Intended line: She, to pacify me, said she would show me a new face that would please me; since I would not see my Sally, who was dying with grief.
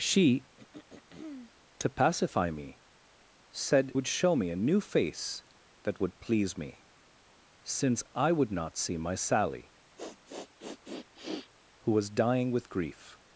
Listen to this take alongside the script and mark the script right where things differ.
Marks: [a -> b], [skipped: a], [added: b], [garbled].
She, to pacify me, said [skipped: she] would show me a new face that would please me; since I would not see my Sally, who was dying with grief.